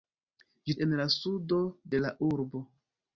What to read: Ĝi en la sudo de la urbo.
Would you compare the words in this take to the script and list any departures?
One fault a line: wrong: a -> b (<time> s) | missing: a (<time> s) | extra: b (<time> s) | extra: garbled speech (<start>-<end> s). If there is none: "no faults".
no faults